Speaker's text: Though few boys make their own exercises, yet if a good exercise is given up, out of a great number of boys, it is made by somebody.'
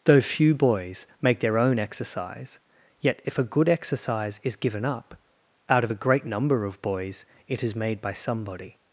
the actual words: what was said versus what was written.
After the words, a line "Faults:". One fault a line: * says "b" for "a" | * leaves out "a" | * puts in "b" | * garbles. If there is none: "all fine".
Though few boys make their own exercise, yet if a good exercise is given up, out of a great number of boys, it is made by somebody.'
Faults:
* says "exercise" for "exercises"